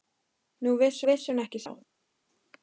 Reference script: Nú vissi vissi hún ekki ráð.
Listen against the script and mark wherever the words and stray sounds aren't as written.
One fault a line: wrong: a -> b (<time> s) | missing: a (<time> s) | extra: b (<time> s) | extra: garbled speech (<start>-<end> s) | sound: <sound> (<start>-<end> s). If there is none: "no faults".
no faults